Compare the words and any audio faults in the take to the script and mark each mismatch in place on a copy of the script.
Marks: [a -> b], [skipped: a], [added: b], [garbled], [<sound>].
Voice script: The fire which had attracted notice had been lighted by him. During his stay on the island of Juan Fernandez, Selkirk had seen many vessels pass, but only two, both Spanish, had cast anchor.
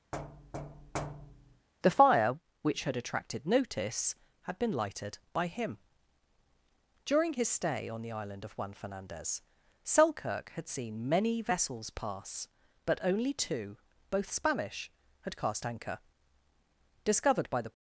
[thud] The fire which had attracted notice had been lighted by him. During his stay on the island of Juan Fernandez, Selkirk had seen many vessels pass, but only two, both Spanish, had cast anchor. [added: Discovered by the]